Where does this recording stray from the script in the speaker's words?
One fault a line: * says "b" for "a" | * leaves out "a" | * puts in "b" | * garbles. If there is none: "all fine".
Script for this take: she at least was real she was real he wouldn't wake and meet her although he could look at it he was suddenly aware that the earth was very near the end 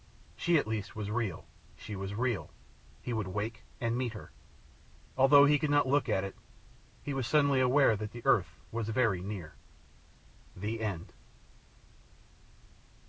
* says "would" for "wouldn't"
* puts in "not"